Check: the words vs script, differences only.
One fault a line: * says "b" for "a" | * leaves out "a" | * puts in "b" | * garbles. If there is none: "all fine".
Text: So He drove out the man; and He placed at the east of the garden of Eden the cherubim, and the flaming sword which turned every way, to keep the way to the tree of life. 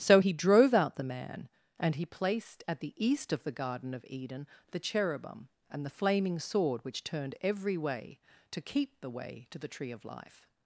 all fine